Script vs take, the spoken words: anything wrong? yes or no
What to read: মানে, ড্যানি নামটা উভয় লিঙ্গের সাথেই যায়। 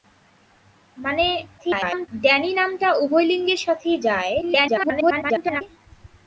yes